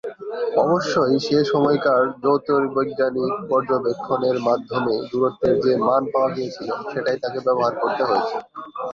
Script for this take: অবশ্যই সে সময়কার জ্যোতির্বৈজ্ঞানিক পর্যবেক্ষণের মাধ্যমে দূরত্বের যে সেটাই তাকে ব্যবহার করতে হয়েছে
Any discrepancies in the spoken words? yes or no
yes